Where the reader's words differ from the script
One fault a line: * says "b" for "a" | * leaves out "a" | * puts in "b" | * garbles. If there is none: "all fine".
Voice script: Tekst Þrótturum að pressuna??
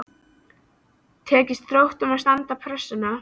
* puts in "standast"